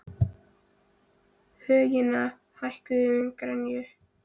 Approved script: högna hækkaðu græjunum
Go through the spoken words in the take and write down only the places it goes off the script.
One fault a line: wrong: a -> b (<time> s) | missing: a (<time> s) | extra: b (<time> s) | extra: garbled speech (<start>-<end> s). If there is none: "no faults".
extra: í (3.2 s)